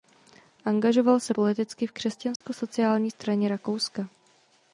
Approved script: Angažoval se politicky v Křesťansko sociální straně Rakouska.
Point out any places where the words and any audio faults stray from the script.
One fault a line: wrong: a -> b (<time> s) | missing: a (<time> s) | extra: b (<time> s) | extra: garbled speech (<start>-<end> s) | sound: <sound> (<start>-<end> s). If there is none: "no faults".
sound: dropout (2.4-2.4 s)